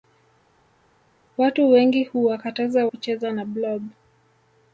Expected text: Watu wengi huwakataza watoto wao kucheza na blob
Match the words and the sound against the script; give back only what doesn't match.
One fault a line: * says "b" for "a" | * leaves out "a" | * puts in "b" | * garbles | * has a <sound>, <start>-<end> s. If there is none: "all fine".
* leaves out "watoto wao"